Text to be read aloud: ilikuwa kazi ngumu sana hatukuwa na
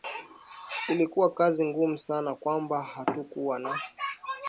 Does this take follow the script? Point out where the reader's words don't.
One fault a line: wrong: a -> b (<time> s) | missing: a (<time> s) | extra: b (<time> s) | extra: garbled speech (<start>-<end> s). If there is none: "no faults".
extra: kwamba (2.4 s)